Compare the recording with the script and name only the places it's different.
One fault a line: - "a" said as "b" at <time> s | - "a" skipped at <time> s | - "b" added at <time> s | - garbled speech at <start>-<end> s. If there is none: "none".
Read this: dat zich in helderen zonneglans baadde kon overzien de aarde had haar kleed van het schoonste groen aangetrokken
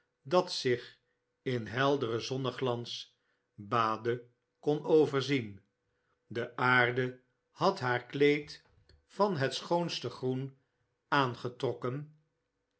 none